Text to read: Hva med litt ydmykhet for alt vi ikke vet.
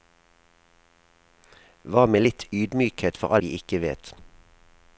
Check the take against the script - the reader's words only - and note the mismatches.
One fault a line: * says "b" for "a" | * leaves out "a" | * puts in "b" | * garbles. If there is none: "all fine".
* leaves out "alt"